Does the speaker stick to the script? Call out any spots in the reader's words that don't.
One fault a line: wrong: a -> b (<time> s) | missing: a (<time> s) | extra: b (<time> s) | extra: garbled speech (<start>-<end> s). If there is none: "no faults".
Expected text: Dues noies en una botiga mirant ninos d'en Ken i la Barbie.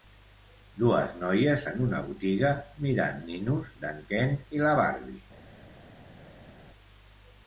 no faults